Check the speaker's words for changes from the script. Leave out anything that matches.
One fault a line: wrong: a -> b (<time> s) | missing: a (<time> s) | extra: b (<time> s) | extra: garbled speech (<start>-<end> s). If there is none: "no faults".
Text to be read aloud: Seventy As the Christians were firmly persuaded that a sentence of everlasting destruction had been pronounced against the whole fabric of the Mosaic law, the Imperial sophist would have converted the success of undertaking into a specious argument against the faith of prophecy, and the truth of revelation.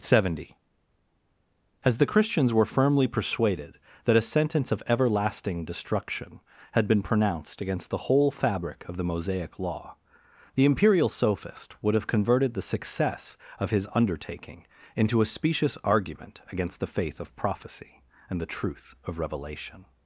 extra: his (13.7 s)